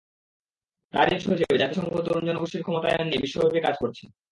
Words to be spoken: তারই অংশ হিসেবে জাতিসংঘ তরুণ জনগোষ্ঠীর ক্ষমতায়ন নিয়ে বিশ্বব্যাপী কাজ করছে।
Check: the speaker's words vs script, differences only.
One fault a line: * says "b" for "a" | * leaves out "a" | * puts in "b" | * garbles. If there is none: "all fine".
all fine